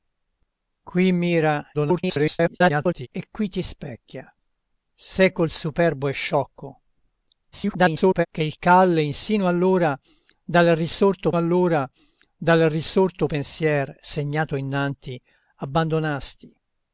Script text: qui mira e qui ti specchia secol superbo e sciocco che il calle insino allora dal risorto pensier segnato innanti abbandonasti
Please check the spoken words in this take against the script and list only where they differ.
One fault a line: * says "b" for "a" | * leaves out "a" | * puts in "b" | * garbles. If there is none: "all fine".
* garbles
* garbles
* puts in "allora dal risorto"